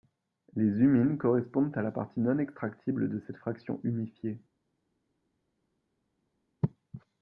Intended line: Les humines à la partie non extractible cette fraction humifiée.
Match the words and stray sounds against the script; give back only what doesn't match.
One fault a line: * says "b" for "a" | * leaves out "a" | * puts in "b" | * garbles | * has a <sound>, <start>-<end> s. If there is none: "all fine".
* puts in "correspondent"
* puts in "de"